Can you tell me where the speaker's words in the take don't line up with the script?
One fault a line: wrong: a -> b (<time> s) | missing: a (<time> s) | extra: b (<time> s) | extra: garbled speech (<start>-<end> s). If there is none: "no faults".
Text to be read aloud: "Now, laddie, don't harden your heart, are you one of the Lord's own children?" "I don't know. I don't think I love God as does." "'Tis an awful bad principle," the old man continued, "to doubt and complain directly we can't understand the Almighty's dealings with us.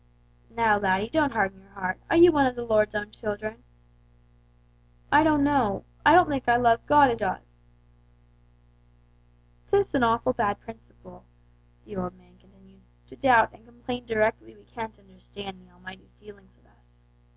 no faults